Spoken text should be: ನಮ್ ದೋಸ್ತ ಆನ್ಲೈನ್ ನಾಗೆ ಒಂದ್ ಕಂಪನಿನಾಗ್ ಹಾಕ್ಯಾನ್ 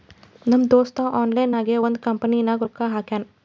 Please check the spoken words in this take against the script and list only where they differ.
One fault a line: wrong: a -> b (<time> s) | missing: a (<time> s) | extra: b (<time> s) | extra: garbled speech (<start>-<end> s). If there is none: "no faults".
extra: ರೊಕ್ಕಾ (2.6 s)